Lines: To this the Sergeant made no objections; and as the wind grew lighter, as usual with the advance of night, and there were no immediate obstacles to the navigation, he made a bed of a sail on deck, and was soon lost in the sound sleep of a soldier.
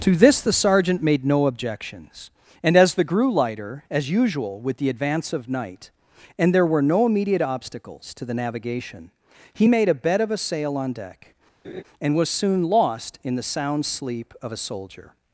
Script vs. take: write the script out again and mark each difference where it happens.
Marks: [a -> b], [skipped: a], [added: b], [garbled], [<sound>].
To this the Sergeant made no objections; and as the [skipped: wind] grew lighter, as usual with the advance of night, and there were no immediate obstacles to the navigation, he made a bed of a sail on deck, [laugh] and was soon lost in the sound sleep of a soldier.